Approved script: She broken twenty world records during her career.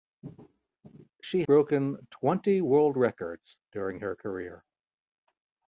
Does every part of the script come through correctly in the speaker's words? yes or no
yes